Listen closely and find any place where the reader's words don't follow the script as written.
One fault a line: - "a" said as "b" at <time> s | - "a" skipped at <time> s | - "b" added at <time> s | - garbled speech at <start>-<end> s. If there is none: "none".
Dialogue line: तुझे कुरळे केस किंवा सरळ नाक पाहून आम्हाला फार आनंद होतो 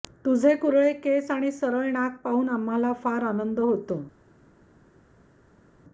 - "किंवा" said as "आणि" at 1.3 s